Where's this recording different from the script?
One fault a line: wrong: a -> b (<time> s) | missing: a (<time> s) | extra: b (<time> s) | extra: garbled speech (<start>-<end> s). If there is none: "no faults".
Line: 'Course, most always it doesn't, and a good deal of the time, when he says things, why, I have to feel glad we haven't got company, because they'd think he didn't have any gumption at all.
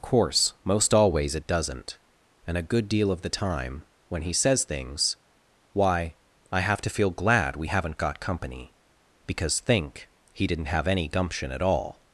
missing: they'd (9.6 s)